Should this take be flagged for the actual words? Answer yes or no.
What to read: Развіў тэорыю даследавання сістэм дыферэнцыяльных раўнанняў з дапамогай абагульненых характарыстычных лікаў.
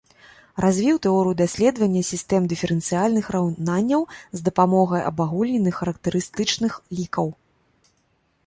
no